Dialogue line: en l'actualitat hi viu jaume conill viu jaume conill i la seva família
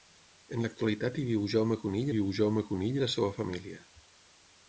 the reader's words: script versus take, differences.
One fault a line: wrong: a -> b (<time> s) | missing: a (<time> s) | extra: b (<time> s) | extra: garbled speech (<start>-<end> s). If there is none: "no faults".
no faults